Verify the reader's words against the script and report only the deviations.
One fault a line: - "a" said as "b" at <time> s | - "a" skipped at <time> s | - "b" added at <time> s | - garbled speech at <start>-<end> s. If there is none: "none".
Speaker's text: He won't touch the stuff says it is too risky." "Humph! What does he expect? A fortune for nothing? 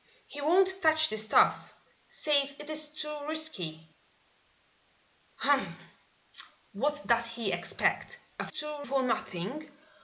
- "fortune" said as "too" at 8.5 s